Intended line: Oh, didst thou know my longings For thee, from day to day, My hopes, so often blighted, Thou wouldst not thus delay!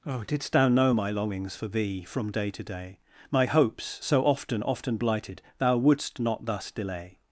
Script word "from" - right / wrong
right